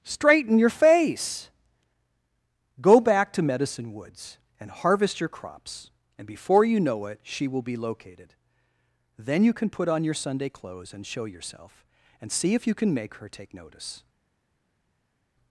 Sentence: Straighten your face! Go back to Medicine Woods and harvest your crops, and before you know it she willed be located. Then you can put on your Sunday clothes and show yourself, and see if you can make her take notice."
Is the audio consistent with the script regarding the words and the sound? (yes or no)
no